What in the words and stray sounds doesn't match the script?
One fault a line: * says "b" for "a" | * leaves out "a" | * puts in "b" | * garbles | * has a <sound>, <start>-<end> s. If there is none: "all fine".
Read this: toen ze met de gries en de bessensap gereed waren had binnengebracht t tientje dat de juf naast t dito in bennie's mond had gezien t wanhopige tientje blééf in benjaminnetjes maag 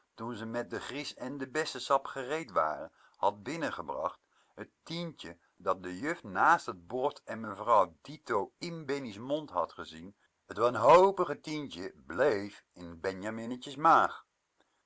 * puts in "bord en mevrouw"